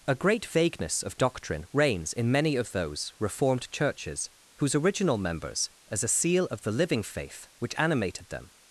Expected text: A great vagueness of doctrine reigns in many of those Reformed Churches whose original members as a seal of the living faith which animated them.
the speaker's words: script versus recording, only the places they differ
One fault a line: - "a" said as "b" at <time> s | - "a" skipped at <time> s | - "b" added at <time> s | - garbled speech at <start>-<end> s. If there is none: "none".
none